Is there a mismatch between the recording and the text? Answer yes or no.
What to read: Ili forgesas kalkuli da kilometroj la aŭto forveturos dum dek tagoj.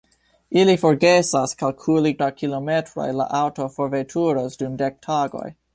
no